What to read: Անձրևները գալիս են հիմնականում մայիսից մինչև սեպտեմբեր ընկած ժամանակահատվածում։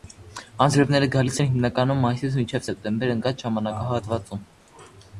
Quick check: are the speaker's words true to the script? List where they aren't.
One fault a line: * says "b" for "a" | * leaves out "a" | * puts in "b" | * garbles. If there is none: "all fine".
all fine